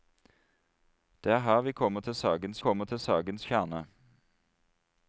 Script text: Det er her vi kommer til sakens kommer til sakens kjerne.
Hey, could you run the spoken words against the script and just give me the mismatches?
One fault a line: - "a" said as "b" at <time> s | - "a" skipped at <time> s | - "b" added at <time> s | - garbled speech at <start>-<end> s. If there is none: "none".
none